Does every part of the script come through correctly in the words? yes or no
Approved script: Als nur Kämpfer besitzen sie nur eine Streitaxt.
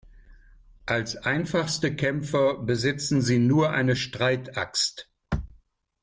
no